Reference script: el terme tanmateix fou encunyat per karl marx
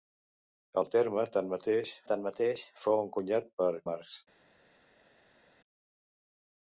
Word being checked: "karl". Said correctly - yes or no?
no